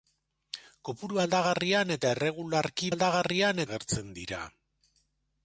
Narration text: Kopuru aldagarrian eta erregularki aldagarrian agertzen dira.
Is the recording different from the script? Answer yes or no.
no